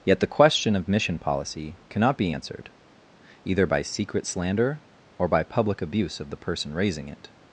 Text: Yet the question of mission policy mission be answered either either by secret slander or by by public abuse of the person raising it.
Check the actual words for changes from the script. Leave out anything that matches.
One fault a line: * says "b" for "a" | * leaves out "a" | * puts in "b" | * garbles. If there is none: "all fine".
* says "cannot" for "mission"
* leaves out "either"
* leaves out "by"